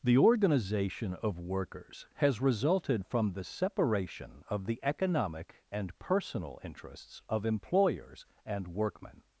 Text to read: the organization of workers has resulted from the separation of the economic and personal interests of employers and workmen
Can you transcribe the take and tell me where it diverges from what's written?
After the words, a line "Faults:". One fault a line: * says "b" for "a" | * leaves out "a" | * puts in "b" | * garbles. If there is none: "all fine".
the organization of workers has resulted from the separation of the economic and personal interests of employers and workmen
Faults:
all fine